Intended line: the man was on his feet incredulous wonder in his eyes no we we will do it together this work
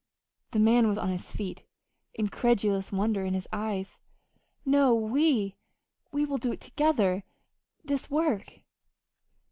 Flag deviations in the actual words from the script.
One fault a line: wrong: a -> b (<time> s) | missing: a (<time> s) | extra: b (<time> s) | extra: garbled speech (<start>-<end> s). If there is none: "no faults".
no faults